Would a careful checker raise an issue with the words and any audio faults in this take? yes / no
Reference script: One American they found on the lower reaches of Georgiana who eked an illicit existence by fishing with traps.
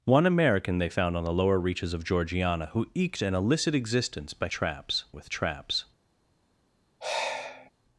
yes